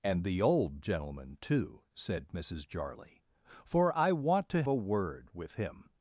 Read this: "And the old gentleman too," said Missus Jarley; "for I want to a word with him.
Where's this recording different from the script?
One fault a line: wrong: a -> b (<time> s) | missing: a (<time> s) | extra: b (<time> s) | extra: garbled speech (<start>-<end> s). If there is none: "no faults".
no faults